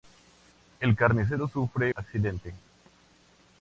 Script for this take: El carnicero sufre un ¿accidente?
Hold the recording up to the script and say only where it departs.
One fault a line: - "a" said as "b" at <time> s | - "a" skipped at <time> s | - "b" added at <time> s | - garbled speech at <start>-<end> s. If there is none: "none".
- "un" skipped at 1.9 s